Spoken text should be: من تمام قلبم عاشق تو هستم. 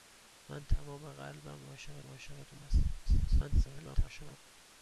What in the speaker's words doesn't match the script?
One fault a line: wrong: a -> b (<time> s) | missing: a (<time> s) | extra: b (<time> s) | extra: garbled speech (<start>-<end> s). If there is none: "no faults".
extra: عاشق (2.0 s)
extra: garbled speech (3.0-4.4 s)